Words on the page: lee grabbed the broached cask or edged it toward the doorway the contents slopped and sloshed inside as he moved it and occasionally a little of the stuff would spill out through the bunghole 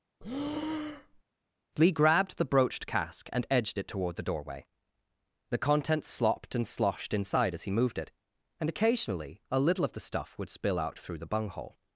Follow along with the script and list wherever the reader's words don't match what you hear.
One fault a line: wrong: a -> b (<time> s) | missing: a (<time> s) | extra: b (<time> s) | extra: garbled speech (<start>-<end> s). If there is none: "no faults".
wrong: or -> and (3.3 s)